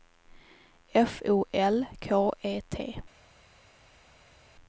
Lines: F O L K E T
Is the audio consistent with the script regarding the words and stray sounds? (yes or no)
yes